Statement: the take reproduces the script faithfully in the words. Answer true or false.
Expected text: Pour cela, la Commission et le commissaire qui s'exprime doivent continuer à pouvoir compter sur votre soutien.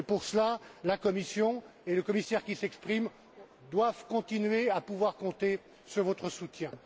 true